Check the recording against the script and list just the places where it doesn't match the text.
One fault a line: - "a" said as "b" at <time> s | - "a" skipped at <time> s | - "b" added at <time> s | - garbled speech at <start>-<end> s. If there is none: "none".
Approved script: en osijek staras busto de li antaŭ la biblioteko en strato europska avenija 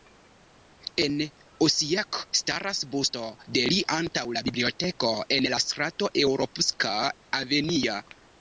- "la" added at 5.5 s